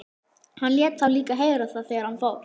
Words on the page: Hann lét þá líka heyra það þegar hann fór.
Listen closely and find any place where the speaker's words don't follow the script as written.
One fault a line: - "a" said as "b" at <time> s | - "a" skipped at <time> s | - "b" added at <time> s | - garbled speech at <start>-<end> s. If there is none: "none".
none